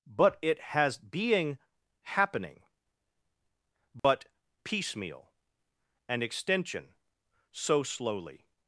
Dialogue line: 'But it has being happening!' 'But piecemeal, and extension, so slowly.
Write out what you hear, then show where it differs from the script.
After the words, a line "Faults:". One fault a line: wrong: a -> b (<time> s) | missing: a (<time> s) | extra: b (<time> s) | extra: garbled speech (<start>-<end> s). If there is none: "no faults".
'But it has being happening!' 'But piecemeal, and extension, so slowly.
Faults:
no faults